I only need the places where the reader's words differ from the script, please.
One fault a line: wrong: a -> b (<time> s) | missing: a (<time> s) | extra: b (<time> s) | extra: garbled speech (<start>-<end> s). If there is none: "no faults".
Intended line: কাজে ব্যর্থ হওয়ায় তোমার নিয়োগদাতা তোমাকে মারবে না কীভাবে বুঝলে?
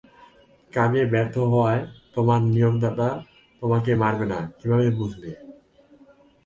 no faults